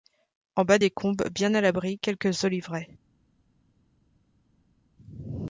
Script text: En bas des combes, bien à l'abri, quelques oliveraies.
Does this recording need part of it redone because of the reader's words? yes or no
no